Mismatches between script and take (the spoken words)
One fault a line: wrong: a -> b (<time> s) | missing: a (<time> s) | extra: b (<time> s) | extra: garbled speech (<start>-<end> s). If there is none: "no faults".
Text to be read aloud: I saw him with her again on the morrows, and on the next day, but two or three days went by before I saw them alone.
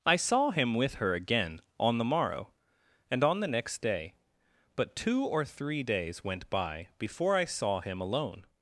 wrong: morrows -> morrow (2.1 s)
wrong: them -> him (7.8 s)